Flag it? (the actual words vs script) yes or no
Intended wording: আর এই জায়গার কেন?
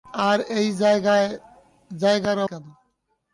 no